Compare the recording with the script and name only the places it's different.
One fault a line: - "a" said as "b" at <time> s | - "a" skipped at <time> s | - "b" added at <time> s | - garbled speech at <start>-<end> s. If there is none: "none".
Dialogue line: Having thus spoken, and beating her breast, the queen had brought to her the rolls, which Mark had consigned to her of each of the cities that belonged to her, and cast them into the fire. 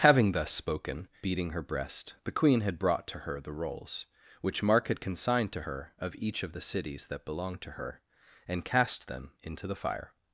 - "and" skipped at 1.1 s